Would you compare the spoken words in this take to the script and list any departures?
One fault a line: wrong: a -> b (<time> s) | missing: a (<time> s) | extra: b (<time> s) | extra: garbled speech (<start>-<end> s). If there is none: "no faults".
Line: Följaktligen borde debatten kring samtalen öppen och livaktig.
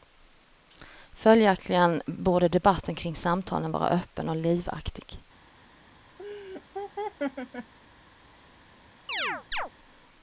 extra: vara (3.7 s)